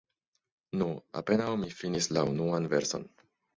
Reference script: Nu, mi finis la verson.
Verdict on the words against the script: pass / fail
fail